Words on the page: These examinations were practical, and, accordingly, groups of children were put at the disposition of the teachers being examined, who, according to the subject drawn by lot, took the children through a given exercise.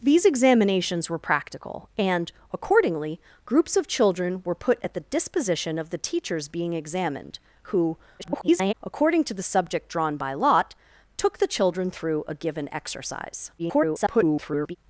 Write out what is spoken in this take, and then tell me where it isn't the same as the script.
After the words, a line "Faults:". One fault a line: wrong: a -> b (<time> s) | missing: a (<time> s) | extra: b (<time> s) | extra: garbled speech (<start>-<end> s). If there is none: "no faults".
These examinations were practical, and, accordingly, groups of children were put at the disposition of the teachers being examined, who, [garbled] according to the subject drawn by lot, took the children through a given exercise. [garbled]
Faults:
extra: garbled speech (8.2-8.7 s)
extra: garbled speech (13.6-14.8 s)